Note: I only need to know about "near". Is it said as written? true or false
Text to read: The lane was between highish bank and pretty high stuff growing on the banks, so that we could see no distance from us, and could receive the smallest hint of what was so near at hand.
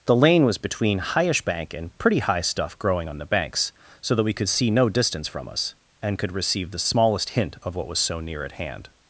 true